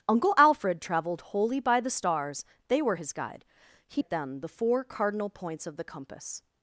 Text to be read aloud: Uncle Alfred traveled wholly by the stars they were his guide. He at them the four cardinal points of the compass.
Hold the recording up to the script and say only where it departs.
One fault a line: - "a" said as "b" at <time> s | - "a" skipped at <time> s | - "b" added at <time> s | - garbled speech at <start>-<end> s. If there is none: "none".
none